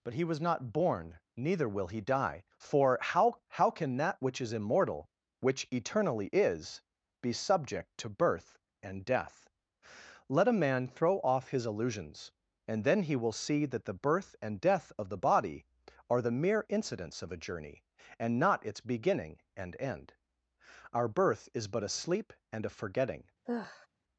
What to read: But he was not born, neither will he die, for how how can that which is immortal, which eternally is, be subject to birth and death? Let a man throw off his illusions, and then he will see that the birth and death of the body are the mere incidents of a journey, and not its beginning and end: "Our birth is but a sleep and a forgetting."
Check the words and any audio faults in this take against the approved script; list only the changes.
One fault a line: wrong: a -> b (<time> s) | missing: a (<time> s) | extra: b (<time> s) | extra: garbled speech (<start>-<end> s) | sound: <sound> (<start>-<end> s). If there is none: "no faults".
sound: sigh (23.4-23.9 s)